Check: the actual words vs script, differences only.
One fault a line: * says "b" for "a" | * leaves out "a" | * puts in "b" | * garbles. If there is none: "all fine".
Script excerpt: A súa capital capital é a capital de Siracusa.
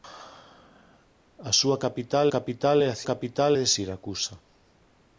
all fine